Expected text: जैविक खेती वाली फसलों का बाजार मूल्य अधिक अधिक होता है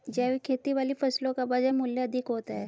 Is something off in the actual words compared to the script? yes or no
yes